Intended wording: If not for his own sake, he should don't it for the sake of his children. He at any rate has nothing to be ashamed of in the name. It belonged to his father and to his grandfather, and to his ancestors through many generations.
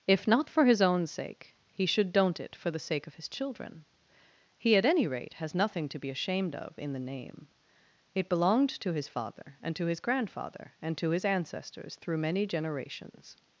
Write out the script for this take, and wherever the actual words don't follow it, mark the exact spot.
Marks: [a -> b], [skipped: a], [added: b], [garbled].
If not for his own sake, he should don't it for the sake of his children. He at any rate has nothing to be ashamed of in the name. It belonged to his father and to his grandfather, and to his ancestors through many generations.